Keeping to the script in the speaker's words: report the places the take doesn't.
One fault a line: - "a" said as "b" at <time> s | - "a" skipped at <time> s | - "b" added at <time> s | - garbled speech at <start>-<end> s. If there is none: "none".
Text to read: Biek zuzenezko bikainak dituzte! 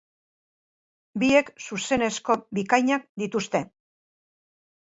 none